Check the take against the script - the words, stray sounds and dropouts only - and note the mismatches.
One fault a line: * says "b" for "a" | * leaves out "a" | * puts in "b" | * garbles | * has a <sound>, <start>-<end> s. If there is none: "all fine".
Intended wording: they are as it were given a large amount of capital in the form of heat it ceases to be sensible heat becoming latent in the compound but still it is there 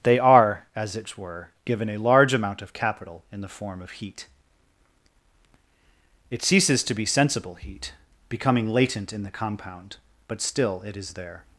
all fine